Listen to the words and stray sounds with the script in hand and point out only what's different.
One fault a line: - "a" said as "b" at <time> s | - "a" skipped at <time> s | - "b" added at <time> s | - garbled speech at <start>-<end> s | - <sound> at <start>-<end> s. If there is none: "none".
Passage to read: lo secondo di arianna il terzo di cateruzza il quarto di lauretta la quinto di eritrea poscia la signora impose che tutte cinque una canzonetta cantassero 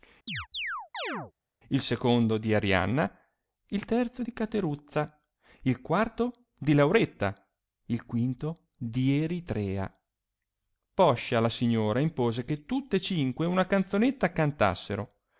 - chirp at 0.3-1.3 s
- "lo" said as "il" at 1.7 s
- "la" said as "il" at 7.9 s